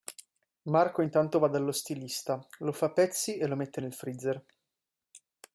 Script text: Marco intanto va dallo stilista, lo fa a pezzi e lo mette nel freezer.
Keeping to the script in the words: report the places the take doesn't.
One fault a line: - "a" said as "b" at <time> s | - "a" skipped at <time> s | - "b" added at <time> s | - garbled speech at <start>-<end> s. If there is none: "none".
none